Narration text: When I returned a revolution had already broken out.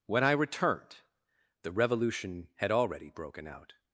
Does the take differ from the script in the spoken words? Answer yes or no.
yes